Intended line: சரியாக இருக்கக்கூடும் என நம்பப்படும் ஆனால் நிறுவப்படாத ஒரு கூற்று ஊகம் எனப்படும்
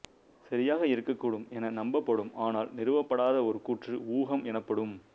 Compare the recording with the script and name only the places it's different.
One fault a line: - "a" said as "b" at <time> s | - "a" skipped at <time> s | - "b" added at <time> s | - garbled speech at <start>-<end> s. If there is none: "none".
none